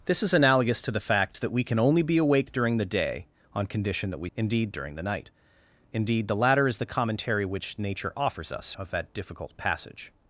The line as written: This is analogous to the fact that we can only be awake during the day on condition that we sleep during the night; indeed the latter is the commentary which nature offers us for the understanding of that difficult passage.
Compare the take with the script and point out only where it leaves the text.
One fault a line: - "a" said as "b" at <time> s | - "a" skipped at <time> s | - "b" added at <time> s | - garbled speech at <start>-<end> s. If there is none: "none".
- "sleep" said as "indeed" at 4.3 s
- "for the understanding" skipped at 8.7 s